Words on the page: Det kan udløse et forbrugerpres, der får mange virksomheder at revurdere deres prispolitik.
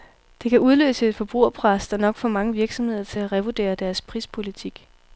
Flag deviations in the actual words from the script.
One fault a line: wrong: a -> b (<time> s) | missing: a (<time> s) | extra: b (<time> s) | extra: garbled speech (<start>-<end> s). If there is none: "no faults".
extra: nok (2.0 s)
extra: til (3.0 s)